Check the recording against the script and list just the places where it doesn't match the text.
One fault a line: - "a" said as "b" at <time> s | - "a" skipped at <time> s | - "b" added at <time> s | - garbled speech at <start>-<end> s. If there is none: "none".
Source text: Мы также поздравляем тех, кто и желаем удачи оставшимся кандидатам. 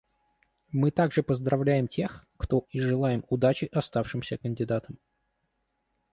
none